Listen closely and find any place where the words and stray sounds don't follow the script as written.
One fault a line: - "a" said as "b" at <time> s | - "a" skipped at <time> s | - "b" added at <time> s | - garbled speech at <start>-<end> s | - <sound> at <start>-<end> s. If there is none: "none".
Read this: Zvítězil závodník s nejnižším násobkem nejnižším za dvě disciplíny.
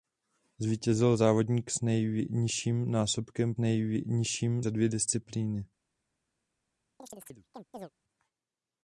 - chirp at 7.0-7.9 s